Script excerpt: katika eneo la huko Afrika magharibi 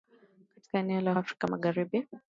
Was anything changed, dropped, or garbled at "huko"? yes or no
yes